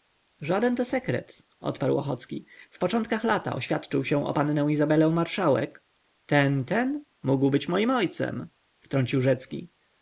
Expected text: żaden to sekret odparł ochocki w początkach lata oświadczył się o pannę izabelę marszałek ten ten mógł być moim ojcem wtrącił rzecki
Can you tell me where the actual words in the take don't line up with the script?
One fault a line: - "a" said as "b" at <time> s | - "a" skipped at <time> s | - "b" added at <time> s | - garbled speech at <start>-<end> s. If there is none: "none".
none